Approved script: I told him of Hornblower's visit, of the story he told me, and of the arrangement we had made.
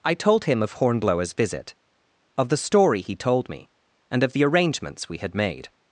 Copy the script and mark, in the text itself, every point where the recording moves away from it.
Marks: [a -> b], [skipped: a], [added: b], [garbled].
I told him of Hornblower's visit, of the story he told me, and of the [arrangement -> arrangements] we had made.